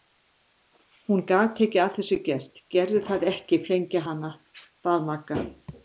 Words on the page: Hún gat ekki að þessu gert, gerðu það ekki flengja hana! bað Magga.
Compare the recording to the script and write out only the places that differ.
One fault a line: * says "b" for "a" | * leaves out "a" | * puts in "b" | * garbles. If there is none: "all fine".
all fine